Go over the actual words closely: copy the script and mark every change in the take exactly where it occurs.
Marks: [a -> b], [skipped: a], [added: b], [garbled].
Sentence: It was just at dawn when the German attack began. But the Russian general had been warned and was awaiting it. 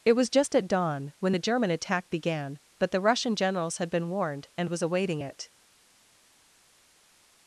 It was just at dawn when the German attack began. But the Russian [general -> generals] had been warned and was awaiting it.